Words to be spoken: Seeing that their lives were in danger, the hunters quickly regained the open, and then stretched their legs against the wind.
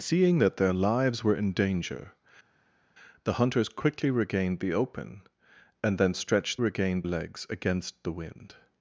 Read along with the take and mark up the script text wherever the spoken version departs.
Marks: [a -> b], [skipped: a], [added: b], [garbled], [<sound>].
Seeing that their lives were in danger, the hunters quickly regained the open, and then stretched [their -> regained] legs against the wind.